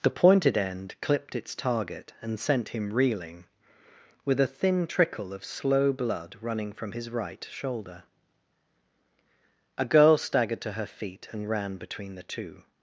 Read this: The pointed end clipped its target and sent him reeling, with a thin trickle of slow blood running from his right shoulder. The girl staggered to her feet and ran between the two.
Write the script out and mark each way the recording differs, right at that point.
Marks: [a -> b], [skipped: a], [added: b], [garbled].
The pointed end clipped its target and sent him reeling, with a thin trickle of slow blood running from his right shoulder. [The -> A] girl staggered to her feet and ran between the two.